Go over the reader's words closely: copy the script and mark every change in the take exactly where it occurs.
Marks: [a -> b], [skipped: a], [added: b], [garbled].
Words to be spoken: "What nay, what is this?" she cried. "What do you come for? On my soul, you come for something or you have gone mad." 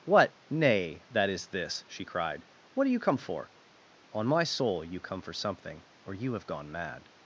"What nay, [what -> that] is this?" she cried. "What do you come for? On my soul, you come for something or you have gone mad."